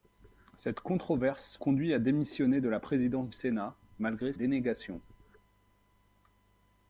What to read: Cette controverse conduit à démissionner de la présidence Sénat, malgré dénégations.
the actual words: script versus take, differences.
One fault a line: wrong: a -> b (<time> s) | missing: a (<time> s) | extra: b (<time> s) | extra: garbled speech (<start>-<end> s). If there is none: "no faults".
no faults